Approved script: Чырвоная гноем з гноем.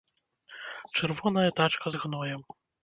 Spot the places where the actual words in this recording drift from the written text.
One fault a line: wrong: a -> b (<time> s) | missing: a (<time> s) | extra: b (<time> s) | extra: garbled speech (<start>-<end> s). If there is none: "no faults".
wrong: гноем -> тачка (1.6 s)